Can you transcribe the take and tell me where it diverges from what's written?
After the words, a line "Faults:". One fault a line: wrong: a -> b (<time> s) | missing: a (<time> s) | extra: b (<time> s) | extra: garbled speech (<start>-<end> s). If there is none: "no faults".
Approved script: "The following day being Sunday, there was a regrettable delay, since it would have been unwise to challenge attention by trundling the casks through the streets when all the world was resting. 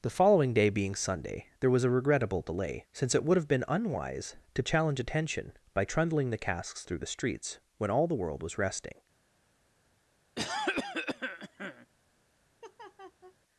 "The following day being Sunday, there was a regrettable delay, since it would have been unwise to challenge attention by trundling the casks through the streets when all the world was resting.
Faults:
no faults